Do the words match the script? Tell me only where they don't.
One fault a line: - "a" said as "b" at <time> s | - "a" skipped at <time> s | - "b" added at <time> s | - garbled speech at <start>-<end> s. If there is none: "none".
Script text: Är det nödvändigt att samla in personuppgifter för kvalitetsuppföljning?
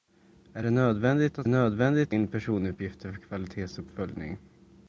- "samla" said as "nödvändigt" at 1.5 s